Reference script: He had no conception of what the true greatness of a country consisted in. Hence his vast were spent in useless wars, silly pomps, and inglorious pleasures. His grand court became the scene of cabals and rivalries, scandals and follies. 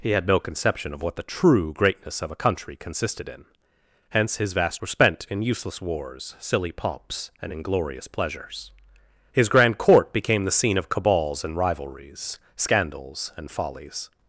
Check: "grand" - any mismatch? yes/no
no